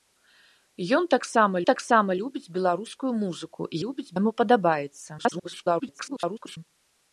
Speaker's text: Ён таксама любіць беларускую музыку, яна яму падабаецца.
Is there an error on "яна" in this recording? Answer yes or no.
yes